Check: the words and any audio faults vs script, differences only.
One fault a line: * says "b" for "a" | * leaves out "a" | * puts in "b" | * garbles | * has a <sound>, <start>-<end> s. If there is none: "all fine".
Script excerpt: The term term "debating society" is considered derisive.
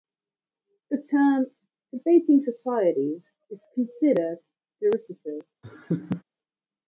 * leaves out "term"
* has a laugh, 5.6-6.2 s